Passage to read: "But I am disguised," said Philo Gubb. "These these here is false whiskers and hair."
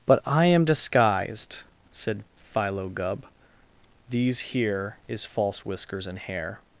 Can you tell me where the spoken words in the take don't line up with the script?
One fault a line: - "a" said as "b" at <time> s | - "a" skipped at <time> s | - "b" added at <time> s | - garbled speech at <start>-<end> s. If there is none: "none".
- "these" skipped at 4.4 s